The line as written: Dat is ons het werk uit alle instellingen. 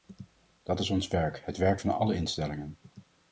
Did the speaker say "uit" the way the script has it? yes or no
no